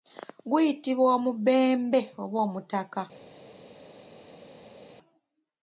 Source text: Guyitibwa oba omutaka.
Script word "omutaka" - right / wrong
right